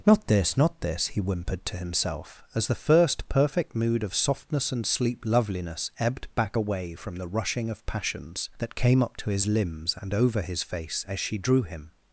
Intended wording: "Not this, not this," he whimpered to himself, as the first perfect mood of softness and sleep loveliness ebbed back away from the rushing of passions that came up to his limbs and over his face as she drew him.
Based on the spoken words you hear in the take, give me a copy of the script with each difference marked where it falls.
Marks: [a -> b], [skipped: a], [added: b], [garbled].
"Not this, not this," he whimpered to himself, as the first perfect mood of softness and sleep loveliness ebbed back away from the rushing of passions that came up to his limbs and over his face as she drew him.